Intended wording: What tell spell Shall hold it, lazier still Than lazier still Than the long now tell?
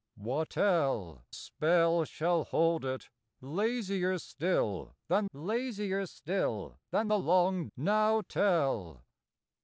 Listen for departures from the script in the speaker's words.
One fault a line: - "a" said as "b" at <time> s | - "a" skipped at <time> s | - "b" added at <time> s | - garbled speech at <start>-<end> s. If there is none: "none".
none